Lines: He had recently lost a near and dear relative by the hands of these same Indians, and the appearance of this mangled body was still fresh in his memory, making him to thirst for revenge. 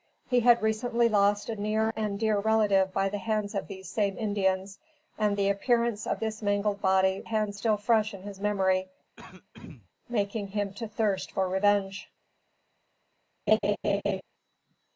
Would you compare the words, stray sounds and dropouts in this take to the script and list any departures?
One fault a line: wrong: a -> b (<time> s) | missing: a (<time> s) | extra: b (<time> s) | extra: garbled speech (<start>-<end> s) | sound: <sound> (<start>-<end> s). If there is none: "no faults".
wrong: was -> hands (7.2 s)
sound: throat clearing (9.2-9.9 s)
sound: laugh (13.5-14.2 s)